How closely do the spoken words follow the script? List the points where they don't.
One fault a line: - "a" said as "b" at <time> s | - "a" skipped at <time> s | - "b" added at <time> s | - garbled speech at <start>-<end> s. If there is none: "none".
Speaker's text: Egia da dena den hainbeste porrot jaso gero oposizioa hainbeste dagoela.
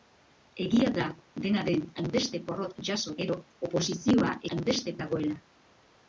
none